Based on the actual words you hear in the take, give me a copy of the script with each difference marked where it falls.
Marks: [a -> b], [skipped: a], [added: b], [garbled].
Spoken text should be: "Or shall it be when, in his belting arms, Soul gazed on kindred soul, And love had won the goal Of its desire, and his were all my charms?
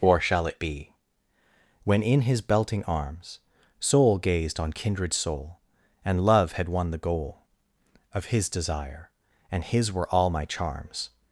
"Or shall it be when, in his belting arms, Soul gazed on kindred soul, And love had won the goal Of [its -> his] desire, and his were all my charms?